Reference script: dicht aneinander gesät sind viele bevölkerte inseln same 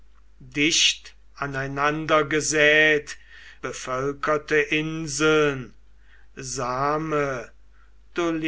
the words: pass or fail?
fail